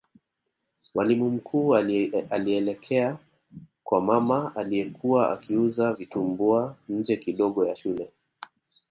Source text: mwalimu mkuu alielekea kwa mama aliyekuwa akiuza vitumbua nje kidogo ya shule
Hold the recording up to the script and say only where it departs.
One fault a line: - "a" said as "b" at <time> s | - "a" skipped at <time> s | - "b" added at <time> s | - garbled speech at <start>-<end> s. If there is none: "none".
none